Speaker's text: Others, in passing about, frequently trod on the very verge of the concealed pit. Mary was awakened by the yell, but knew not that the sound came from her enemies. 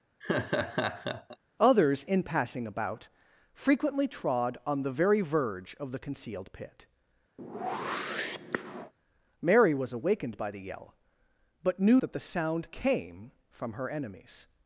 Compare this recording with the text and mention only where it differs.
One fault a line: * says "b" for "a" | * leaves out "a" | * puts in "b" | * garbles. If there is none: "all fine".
* leaves out "not"